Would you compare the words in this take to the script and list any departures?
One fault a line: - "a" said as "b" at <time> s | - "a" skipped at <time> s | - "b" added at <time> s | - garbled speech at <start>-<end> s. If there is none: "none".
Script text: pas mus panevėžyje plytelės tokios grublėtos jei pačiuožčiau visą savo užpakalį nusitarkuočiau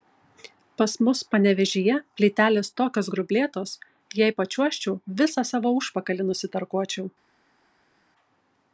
none